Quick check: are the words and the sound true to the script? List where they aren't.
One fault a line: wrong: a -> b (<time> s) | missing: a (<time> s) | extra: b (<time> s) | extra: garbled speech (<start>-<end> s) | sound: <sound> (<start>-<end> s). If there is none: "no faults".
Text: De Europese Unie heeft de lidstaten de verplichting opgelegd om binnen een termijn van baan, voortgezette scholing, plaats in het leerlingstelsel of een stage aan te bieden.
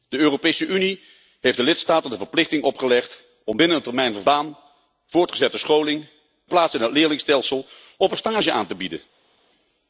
no faults